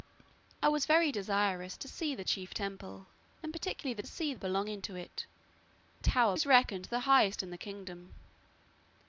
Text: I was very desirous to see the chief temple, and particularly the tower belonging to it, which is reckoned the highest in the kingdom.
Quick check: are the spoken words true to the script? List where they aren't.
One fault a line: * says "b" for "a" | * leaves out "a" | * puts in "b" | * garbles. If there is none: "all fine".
* says "see" for "tower"
* says "tower" for "which"